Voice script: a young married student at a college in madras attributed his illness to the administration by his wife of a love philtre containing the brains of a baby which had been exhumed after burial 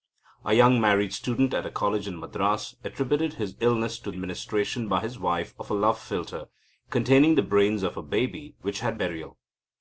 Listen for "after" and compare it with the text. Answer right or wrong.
wrong